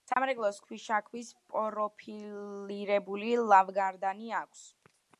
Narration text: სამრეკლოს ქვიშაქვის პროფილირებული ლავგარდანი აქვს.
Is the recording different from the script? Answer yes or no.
no